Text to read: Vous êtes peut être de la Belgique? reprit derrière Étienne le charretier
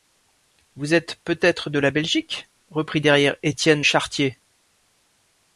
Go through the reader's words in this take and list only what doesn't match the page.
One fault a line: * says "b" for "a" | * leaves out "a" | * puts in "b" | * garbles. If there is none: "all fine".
* leaves out "le"